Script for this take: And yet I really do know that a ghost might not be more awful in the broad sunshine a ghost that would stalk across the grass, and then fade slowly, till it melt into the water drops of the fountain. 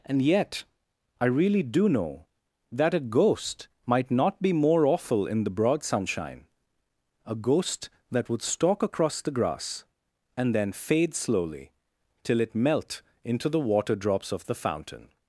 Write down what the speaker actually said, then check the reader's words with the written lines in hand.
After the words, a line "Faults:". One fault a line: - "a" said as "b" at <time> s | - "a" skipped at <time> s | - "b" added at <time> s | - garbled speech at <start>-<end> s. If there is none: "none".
And yet I really do know that a ghost might not be more awful in the broad sunshine a ghost that would stalk across the grass, and then fade slowly, till it melt into the water drops of the fountain.
Faults:
none